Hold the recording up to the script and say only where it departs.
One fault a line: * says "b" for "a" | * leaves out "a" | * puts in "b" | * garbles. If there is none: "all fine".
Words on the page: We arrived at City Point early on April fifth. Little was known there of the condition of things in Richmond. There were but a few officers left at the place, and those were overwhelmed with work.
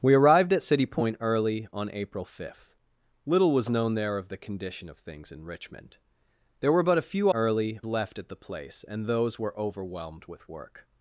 * says "early" for "officers"